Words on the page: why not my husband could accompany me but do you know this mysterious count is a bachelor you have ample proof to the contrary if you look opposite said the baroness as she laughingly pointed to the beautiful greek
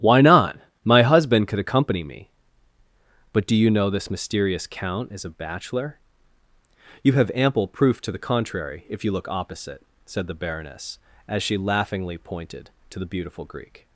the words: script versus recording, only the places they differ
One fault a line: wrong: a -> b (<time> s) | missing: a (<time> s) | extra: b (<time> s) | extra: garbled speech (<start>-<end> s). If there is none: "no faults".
no faults